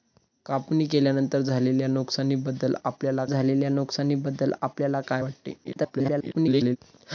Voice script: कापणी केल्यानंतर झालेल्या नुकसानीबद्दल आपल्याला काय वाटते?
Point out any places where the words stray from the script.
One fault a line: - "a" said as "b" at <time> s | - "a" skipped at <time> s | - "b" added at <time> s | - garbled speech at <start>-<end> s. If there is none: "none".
- "झालेल्या नुकसानीबद्दल आपल्याला" added at 3.2 s
- garbled speech at 5.6-6.8 s